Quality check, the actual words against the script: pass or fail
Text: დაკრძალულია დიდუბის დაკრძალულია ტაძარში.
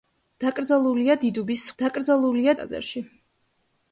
pass